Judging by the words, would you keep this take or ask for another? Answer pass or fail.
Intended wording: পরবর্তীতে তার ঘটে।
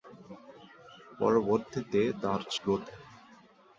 pass